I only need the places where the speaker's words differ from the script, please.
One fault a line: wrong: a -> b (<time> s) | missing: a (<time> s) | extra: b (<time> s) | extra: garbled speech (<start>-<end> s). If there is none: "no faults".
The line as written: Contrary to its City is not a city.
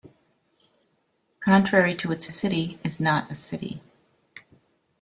no faults